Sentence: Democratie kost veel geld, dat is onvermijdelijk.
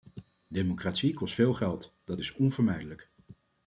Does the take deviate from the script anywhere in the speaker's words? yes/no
no